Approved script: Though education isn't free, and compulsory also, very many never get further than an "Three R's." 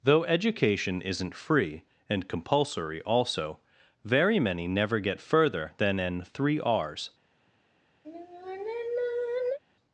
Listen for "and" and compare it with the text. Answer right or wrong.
right